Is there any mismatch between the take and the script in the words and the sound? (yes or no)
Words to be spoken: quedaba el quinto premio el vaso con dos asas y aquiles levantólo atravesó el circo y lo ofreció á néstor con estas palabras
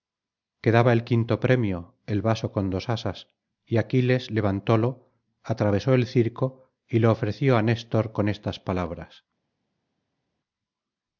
no